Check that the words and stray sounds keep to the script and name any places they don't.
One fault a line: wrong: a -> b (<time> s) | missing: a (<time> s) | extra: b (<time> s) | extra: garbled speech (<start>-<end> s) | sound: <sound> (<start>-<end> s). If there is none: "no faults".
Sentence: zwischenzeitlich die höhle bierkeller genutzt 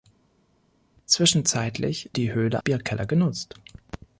no faults